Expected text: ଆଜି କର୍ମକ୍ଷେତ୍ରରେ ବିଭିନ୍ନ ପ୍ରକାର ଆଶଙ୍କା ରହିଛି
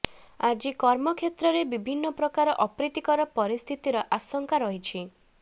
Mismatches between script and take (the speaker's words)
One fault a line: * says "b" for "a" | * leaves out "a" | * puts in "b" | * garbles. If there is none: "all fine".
* puts in "ଅପ୍ରୀତିକର ପରିସ୍ଥିତିର"